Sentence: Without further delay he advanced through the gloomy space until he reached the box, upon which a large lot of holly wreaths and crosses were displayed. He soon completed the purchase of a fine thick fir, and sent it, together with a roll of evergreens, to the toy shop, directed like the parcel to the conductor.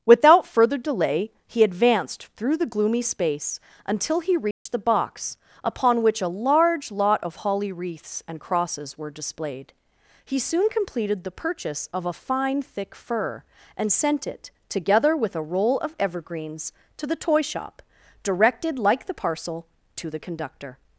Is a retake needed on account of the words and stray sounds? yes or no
yes